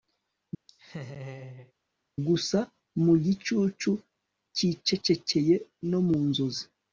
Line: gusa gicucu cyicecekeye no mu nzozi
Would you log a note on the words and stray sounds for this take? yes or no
yes